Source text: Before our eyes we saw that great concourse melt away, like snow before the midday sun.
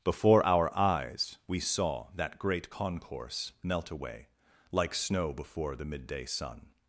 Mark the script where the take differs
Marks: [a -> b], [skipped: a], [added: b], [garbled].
Before our eyes we saw that great concourse melt away, like snow before the midday sun.